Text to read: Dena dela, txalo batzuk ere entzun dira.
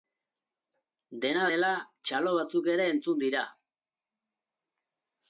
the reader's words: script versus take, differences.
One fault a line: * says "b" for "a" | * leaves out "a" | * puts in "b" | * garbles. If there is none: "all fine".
all fine